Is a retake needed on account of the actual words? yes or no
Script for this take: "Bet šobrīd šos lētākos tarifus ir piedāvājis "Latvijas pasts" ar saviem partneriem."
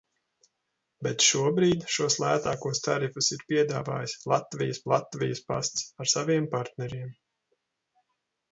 yes